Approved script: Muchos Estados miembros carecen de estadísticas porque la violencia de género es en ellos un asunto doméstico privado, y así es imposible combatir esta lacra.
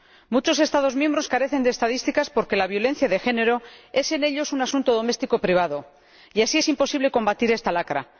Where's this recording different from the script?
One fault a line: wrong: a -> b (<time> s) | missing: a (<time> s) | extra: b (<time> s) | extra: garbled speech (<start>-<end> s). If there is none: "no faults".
no faults